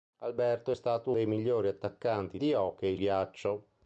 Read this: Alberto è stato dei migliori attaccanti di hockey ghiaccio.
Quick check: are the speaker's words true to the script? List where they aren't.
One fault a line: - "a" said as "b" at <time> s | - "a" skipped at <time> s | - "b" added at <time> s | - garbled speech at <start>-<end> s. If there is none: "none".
none